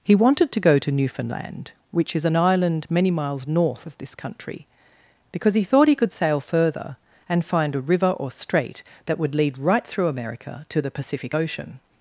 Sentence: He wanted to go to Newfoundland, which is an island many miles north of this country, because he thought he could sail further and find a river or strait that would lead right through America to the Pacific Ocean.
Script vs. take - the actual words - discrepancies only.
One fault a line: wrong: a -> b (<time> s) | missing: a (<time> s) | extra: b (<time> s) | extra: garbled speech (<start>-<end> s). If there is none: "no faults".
no faults